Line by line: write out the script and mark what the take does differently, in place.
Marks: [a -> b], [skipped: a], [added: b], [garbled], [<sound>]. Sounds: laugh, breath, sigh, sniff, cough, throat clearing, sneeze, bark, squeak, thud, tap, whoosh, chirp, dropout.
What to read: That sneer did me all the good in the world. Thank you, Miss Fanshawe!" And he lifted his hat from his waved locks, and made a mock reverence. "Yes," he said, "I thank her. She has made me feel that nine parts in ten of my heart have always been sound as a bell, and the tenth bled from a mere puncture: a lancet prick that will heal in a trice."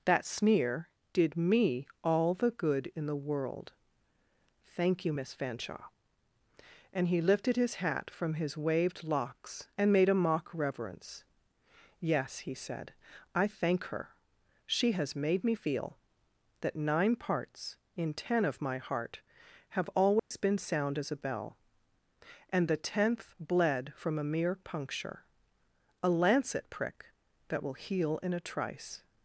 That sneer did me all the good in the world. Thank you, Miss Fanshawe!" And he lifted his hat from his waved locks, and made a mock reverence. "Yes," he said, "I thank her. She has made me feel that nine parts in ten of my heart have always [dropout] been sound as a bell, and the tenth bled from a mere puncture: a lancet prick that will heal in a trice."